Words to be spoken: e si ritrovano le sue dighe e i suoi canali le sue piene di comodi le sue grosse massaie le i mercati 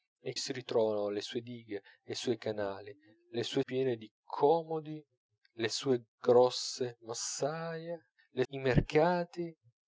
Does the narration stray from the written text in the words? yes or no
no